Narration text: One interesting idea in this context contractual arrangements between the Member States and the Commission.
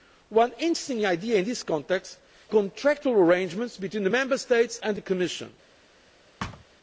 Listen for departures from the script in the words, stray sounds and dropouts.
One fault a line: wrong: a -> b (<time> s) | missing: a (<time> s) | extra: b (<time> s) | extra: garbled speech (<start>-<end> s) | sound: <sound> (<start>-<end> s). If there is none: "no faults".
sound: thud (6.4-6.6 s)